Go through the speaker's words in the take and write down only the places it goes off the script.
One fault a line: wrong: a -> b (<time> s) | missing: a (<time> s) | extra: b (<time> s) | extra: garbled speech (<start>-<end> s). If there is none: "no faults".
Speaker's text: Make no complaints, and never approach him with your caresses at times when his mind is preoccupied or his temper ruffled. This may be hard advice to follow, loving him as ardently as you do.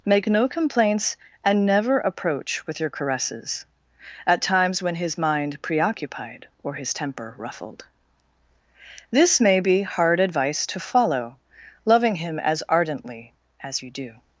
missing: him (2.6 s)
missing: is (5.6 s)